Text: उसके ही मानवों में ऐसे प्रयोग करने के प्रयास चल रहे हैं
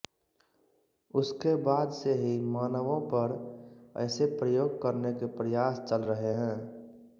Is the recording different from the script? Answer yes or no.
yes